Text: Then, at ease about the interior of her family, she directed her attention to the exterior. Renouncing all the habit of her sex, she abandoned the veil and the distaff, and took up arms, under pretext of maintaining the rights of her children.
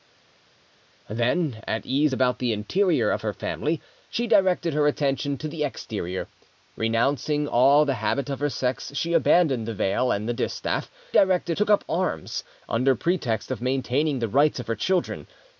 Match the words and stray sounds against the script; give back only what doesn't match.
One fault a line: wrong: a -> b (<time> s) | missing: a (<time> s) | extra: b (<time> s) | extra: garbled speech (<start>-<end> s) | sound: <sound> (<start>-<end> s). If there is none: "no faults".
wrong: and -> directed (11.1 s)